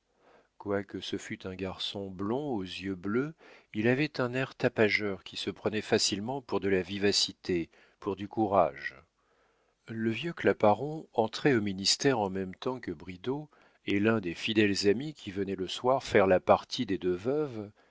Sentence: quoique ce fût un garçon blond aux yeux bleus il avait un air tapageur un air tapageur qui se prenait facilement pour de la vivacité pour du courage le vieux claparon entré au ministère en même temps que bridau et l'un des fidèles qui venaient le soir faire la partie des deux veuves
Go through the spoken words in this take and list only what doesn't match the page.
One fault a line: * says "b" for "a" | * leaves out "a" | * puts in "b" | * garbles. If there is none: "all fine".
* leaves out "un air tapageur"
* puts in "amis"